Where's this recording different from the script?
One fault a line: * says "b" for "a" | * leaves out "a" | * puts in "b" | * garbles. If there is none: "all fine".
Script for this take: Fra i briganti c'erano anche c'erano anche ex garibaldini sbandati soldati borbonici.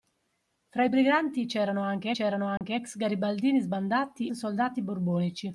all fine